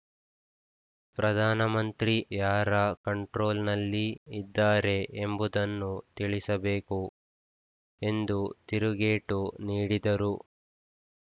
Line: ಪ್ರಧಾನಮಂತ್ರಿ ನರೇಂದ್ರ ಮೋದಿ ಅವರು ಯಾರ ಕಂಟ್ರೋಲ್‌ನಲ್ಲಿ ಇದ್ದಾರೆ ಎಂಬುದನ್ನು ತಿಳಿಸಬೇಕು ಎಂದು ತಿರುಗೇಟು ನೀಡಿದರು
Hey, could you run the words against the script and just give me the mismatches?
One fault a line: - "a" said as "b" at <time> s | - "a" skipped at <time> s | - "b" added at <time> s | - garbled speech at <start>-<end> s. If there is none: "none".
- "ನರೇಂದ್ರ ಮೋದಿ ಅವರು" skipped at 2.1 s